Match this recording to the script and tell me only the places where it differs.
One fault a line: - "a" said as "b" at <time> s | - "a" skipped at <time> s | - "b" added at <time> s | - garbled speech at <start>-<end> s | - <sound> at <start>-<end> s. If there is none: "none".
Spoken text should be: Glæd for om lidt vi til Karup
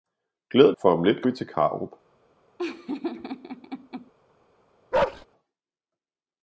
- laugh at 2.6-4.1 s
- bark at 4.9-5.3 s